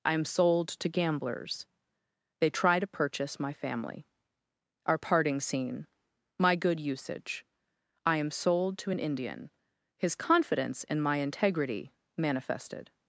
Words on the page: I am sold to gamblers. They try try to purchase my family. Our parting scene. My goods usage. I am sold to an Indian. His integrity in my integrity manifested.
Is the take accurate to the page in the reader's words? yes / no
no